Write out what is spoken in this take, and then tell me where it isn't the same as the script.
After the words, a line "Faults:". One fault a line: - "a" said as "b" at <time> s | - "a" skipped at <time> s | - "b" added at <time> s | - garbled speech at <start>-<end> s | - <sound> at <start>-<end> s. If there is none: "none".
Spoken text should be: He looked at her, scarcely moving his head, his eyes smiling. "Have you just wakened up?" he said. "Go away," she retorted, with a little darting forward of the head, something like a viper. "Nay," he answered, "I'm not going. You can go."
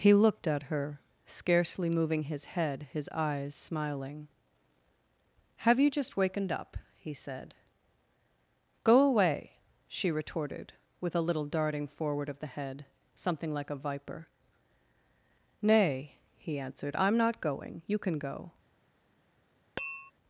He looked at her, scarcely moving his head, his eyes smiling. "Have you just wakened up?" he said. "Go away," she retorted, with a little darting forward of the head, something like a viper. "Nay," he answered, "I'm not going. You can go."
Faults:
- tap at 19.8-20.1 s